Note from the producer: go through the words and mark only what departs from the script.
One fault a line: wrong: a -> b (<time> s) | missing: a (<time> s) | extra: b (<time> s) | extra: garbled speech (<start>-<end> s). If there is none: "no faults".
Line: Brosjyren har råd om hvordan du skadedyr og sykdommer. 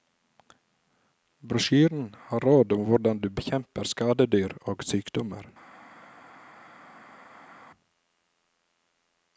extra: bekjemper (3.3 s)